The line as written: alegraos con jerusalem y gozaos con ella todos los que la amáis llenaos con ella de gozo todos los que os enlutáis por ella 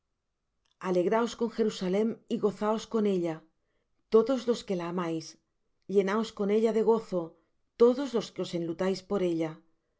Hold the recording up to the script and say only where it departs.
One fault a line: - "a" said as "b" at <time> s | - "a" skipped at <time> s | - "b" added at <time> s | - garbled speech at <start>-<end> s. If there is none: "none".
none